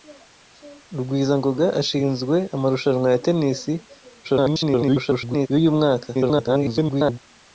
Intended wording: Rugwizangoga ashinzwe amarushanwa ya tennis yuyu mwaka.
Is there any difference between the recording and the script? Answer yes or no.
yes